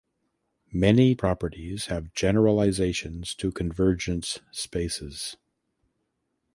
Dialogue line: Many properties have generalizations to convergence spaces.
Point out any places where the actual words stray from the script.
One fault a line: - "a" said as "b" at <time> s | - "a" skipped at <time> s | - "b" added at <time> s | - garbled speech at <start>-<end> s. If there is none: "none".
none